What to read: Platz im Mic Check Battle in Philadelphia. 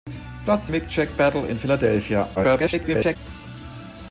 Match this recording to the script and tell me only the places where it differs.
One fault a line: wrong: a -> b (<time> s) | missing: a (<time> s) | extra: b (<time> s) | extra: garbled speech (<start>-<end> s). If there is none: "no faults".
missing: im (0.7 s)
extra: garbled speech (2.3-3.2 s)